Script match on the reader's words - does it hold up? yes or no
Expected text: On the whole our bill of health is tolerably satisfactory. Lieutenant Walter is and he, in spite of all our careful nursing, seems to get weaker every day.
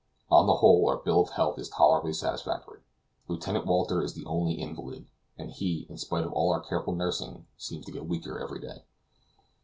no